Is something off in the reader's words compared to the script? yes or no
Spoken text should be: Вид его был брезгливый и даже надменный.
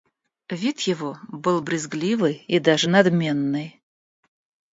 no